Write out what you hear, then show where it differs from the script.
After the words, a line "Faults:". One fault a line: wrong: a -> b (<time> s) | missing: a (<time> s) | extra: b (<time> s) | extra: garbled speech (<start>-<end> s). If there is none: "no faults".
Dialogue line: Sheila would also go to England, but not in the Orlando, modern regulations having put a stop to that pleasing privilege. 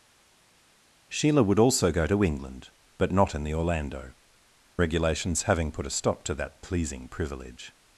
Sheila would also go to England, but not in the Orlando, regulations having put a stop to that pleasing privilege.
Faults:
missing: modern (4.1 s)